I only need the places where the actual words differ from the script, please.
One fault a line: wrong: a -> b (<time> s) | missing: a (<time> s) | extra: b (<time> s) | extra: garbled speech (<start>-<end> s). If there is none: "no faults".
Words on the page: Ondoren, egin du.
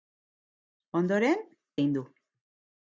no faults